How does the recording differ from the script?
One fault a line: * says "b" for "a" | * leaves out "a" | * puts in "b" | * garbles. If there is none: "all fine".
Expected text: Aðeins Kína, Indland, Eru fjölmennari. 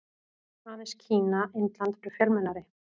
all fine